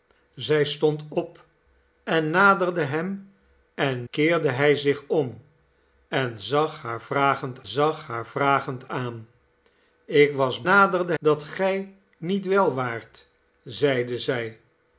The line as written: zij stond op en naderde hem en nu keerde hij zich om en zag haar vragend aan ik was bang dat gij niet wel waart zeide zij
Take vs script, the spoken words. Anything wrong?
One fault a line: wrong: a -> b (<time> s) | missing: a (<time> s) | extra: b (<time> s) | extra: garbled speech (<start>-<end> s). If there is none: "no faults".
missing: nu (4.1 s)
extra: zag haar vragend (7.6 s)
wrong: bang -> naderde (10.6 s)